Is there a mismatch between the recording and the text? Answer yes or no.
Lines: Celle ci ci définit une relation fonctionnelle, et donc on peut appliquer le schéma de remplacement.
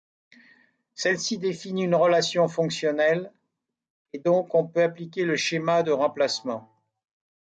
yes